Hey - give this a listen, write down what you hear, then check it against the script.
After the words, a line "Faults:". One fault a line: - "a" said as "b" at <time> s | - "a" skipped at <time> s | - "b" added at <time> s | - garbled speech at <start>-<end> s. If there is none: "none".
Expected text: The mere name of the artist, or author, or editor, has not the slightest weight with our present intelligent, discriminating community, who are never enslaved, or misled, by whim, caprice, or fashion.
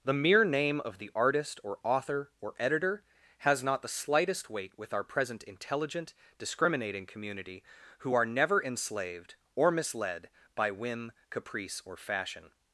The mere name of the artist, or author, or editor, has not the slightest weight with our present intelligent, discriminating community, who are never enslaved, or misled, by whim, caprice, or fashion.
Faults:
none